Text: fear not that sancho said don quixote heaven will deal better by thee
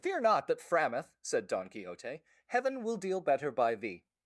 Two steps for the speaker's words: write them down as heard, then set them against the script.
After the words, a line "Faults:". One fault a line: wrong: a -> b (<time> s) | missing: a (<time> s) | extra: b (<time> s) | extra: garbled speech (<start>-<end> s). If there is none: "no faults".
fear not that frameth said don quixote heaven will deal better by thee
Faults:
wrong: sancho -> frameth (0.6 s)